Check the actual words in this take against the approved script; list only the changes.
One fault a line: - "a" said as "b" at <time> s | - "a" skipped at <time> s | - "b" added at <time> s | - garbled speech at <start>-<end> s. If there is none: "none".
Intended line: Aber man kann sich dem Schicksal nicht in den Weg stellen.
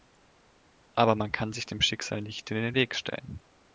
none